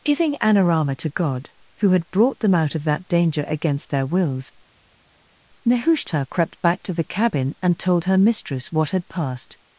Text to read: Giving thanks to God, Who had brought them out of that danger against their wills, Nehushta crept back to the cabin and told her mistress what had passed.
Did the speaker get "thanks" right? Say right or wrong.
wrong